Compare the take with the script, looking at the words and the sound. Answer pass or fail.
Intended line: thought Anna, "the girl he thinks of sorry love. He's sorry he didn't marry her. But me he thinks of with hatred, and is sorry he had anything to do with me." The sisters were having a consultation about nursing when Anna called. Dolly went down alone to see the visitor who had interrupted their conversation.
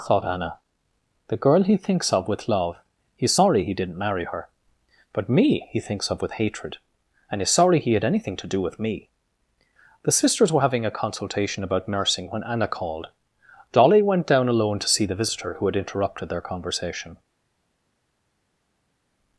fail